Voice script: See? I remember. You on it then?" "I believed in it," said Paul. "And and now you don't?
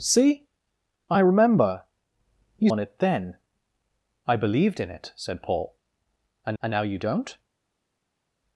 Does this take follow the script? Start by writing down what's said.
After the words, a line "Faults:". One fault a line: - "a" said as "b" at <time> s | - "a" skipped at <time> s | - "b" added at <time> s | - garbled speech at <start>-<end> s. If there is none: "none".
See? I remember. You on it then?" "I believed in it," said Paul. "And and now you don't?
Faults:
none